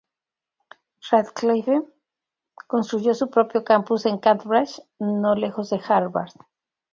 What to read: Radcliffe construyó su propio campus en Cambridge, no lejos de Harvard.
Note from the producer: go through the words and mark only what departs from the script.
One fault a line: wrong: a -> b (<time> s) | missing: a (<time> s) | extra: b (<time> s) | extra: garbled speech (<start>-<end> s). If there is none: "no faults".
no faults